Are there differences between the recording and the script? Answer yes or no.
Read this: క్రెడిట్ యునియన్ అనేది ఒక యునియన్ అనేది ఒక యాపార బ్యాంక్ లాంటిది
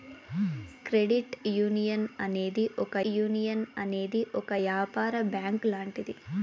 no